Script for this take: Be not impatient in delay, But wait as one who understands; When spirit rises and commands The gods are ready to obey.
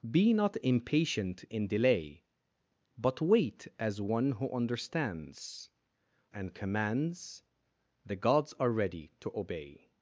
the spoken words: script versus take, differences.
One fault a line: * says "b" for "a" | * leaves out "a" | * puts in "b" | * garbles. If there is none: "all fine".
* leaves out "When spirit rises"